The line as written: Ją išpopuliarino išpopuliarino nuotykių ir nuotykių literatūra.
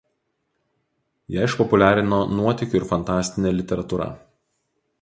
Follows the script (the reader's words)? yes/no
no